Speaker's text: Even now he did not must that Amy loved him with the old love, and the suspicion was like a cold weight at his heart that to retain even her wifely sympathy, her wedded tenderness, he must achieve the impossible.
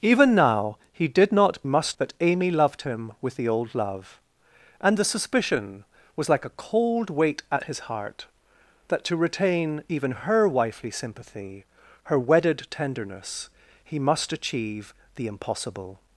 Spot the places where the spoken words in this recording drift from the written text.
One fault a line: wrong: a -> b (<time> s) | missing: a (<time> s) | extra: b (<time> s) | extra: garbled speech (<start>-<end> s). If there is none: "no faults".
no faults